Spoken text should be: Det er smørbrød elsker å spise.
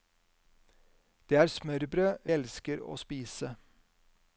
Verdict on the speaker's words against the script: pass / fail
pass